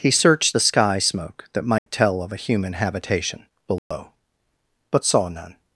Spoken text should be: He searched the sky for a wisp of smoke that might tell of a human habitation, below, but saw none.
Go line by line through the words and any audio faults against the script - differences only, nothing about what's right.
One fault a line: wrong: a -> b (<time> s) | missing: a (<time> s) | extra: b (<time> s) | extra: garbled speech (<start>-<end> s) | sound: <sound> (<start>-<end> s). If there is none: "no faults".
missing: for a wisp of (1.0 s)
sound: dropout (1.8-1.9 s)
sound: dropout (3.8-3.9 s)